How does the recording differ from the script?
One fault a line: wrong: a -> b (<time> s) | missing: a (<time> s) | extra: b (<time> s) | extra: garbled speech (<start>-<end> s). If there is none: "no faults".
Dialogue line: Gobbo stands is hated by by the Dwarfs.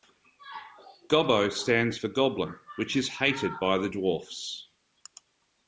extra: for Goblin which (1.9 s)
missing: by (3.8 s)